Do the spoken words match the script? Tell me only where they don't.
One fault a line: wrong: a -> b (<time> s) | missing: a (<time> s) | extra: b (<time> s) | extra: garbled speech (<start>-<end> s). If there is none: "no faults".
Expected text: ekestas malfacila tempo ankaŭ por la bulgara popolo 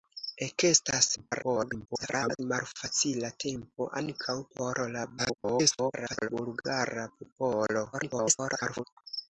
extra: garbled speech (1.2-2.4 s)
extra: garbled speech (5.2-6.3 s)
extra: garbled speech (7.9-8.8 s)